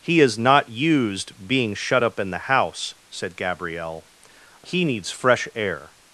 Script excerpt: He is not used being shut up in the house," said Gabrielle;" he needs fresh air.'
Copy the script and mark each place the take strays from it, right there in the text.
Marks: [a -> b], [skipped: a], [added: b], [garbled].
He is not used being shut up in the house," said Gabrielle;" he needs fresh air.'